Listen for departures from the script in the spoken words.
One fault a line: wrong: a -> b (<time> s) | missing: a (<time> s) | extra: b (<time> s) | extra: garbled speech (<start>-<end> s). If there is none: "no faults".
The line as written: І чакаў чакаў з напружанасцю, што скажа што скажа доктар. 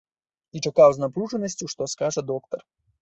missing: чакаў (0.9 s)
missing: што скажа (2.2 s)